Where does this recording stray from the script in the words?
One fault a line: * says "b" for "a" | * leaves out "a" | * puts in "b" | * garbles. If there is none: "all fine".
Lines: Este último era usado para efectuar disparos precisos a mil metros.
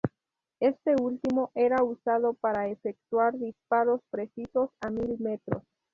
all fine